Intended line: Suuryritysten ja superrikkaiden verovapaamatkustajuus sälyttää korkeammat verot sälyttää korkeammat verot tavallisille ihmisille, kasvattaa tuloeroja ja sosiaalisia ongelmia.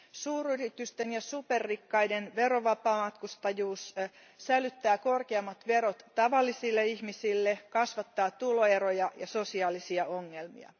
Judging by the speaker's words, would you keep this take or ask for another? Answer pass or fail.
fail